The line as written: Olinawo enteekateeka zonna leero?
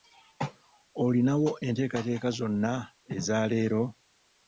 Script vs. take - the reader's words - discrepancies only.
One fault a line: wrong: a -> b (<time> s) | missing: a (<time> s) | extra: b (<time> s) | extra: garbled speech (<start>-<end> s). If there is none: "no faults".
extra: eza (3.2 s)